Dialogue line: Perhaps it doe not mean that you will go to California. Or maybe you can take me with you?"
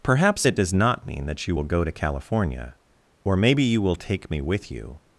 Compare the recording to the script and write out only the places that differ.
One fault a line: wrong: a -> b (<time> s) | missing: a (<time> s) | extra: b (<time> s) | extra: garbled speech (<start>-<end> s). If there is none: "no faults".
wrong: doe -> does (0.5 s)
wrong: can -> will (3.8 s)